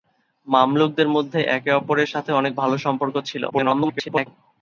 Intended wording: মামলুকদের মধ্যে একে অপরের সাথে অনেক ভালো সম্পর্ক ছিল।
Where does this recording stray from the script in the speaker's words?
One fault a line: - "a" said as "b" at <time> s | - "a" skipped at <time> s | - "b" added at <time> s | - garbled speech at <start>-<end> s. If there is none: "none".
- garbled speech at 3.5-4.3 s